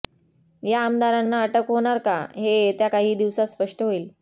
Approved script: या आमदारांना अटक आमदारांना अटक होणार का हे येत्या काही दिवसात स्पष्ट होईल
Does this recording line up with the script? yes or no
no